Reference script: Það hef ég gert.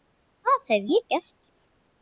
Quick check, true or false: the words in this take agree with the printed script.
true